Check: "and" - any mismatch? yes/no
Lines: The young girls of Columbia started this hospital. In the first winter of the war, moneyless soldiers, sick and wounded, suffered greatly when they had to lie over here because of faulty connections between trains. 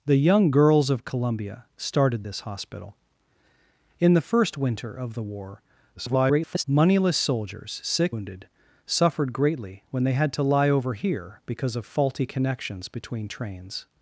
yes